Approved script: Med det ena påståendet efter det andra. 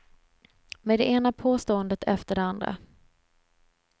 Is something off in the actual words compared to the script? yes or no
no